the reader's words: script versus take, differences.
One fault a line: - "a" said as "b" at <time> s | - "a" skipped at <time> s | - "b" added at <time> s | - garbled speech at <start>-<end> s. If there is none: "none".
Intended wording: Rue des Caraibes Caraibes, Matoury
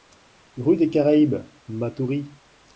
- "Caraibes" skipped at 1.4 s